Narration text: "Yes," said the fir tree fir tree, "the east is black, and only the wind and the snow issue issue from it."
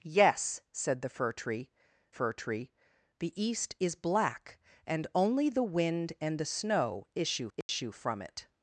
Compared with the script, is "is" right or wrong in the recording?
right